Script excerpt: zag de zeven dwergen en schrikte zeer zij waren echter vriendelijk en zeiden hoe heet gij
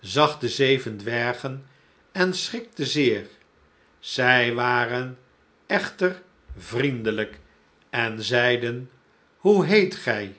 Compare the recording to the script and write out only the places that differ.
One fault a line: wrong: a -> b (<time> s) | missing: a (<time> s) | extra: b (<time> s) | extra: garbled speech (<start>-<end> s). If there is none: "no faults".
no faults